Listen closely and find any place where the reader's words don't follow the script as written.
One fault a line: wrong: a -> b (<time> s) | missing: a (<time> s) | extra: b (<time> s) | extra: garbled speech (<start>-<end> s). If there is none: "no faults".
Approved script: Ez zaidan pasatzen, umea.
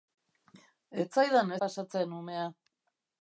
no faults